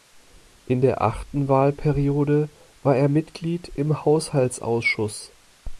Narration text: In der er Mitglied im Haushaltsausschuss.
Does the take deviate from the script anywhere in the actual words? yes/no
yes